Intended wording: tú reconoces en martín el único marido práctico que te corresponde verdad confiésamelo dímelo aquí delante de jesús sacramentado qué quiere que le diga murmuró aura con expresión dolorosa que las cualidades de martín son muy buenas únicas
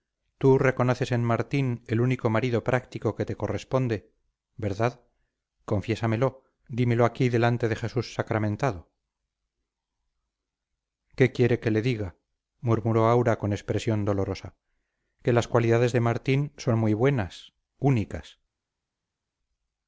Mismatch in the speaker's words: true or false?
false